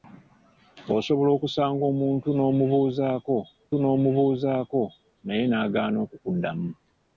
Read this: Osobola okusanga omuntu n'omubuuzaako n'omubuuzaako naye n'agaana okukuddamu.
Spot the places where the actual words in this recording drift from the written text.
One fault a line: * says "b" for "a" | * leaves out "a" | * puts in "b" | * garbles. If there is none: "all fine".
all fine